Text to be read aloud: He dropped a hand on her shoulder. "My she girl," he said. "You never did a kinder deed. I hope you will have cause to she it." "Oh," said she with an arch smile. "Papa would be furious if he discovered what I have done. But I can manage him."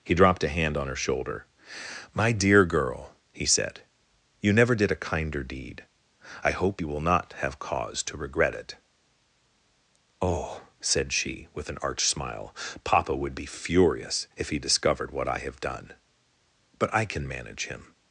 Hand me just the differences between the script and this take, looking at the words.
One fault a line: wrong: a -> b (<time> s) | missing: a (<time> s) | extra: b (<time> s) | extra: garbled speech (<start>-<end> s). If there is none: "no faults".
wrong: she -> dear (2.3 s)
extra: not (7.0 s)
wrong: she -> regret (8.2 s)